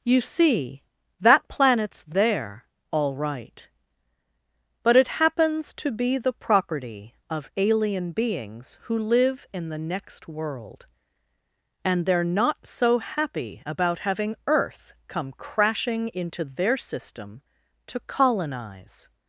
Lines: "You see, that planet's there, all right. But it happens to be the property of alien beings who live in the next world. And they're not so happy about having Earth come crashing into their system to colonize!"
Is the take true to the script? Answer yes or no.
yes